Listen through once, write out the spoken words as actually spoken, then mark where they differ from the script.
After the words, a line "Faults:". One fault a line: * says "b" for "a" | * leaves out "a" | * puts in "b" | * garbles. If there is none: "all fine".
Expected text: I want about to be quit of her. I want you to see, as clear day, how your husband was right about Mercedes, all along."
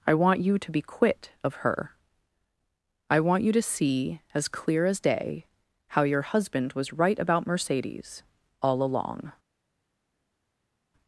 I want you to be quit of her. I want you to see, as clear as day, how your husband was right about Mercedes, all along."
Faults:
* says "you" for "about"
* puts in "as"